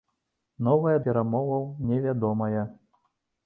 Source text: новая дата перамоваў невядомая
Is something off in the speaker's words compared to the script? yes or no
yes